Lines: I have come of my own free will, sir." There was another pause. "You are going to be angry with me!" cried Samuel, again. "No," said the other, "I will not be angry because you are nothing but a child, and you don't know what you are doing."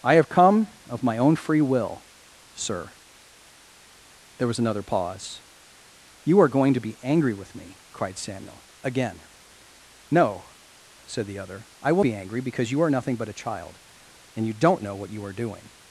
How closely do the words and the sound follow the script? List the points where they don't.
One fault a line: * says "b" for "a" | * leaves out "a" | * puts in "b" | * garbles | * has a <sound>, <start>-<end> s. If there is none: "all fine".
* leaves out "not"